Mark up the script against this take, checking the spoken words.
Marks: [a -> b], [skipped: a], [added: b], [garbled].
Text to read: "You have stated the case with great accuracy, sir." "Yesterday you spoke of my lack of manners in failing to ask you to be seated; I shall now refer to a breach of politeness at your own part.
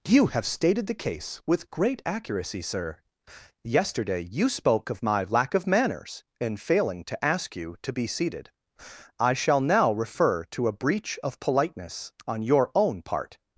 "You have stated the case with great accuracy, sir." "Yesterday you spoke of my lack of manners in failing to ask you to be seated; I shall now refer to a breach of politeness [at -> on] your own part.